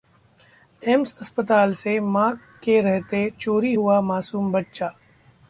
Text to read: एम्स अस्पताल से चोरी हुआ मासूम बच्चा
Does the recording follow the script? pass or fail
fail